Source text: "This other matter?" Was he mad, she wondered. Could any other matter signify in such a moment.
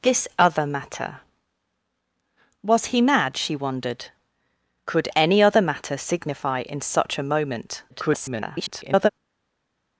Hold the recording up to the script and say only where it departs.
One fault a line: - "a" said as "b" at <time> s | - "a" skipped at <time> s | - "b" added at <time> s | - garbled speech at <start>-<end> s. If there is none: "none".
- garbled speech at 7.9-9.1 s